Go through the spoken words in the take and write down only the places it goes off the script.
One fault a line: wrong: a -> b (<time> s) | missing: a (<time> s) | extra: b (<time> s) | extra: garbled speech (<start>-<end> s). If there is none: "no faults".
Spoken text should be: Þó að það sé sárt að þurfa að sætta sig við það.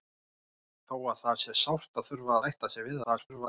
missing: að (2.4 s)
extra: garbled speech (3.0-3.5 s)